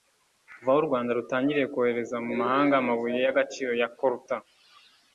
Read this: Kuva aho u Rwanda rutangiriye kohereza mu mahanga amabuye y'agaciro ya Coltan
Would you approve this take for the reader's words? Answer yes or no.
yes